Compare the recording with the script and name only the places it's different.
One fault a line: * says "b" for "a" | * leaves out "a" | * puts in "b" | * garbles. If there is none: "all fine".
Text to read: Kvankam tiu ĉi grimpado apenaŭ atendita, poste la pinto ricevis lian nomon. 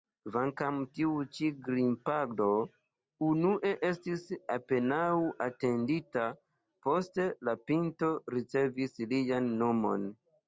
* puts in "unue estis"